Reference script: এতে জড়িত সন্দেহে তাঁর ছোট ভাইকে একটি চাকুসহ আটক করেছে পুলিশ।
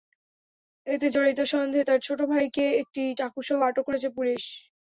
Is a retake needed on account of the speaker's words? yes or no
no